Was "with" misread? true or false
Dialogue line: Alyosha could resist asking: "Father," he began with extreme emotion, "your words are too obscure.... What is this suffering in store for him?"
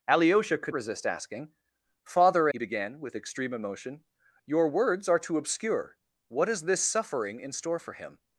false